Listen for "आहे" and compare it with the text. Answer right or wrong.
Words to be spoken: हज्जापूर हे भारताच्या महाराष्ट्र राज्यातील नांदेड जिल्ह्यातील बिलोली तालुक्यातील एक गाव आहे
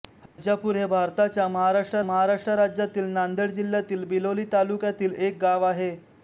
right